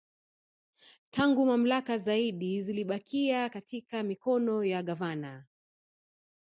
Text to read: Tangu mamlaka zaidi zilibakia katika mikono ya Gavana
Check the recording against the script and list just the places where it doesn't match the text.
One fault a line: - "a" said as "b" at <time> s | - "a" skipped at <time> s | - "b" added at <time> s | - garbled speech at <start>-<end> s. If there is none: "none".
none